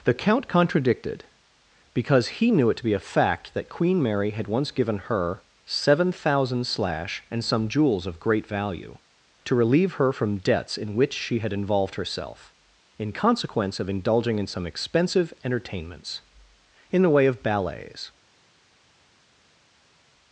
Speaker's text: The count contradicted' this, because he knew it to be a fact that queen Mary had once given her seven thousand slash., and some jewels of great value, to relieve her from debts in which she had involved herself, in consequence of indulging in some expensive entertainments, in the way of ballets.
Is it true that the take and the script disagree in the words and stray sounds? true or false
true